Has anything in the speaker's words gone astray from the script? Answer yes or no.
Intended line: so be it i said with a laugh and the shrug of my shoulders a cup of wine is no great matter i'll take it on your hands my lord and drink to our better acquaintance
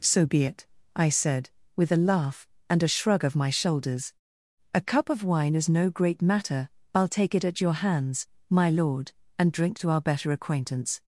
yes